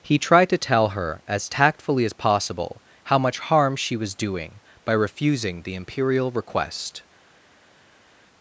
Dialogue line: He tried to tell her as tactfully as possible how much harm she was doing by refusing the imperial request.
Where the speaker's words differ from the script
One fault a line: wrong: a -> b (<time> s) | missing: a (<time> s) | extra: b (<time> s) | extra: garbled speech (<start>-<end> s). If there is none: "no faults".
no faults